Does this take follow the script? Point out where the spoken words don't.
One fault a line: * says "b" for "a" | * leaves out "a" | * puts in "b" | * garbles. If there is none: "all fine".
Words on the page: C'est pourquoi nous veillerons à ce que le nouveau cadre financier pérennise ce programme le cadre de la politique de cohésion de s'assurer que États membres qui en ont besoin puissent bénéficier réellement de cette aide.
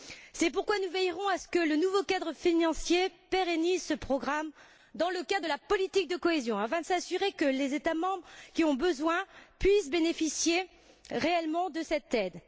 * puts in "dans"
* puts in "afin"
* puts in "les"